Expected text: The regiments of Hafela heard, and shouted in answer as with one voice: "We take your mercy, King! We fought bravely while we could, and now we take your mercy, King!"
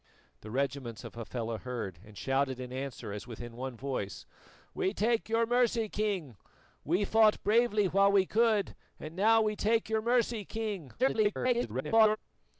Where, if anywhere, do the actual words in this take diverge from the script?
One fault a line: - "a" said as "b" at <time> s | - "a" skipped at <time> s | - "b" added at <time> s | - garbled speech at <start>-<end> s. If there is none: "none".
- garbled speech at 11.0-12.2 s